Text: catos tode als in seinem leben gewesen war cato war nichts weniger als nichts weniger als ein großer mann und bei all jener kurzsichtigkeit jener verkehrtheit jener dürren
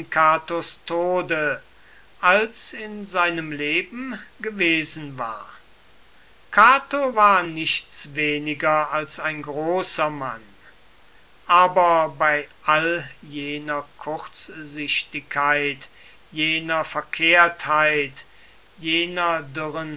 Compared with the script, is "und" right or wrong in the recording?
wrong